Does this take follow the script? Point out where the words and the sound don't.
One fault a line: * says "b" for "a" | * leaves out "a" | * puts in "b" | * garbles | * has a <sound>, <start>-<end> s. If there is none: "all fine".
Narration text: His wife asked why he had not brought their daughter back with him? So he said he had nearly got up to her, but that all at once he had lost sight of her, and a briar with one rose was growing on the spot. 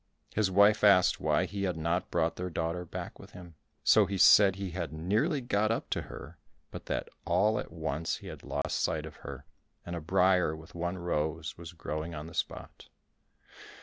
* has a dropout, 8.6-8.6 s